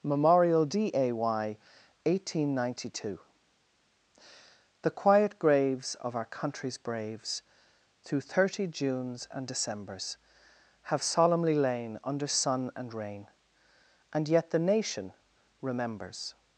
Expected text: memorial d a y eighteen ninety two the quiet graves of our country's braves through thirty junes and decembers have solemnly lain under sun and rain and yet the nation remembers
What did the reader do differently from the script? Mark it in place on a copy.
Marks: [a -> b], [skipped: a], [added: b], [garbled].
memorial d a y eighteen ninety two the quiet graves of our country's braves through thirty junes and decembers have solemnly lain under sun and rain and yet the nation remembers